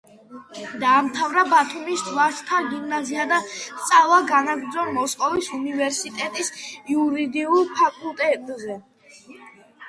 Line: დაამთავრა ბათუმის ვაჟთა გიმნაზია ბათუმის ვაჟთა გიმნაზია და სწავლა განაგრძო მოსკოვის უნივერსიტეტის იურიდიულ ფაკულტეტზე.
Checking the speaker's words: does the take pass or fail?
fail